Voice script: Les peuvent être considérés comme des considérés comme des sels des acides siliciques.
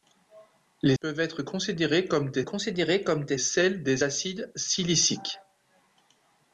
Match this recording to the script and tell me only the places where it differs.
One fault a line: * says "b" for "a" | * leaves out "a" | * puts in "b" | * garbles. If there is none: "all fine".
all fine